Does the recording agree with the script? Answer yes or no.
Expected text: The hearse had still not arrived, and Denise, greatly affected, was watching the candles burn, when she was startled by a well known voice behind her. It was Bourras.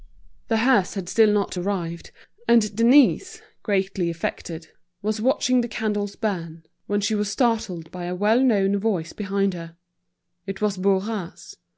yes